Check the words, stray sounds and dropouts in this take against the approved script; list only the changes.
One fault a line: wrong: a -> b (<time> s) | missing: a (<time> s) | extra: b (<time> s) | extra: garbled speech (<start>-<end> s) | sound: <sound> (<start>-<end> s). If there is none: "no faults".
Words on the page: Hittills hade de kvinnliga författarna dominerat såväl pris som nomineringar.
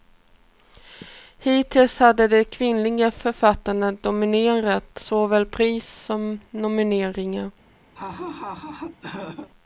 sound: laugh (7.9-9.5 s)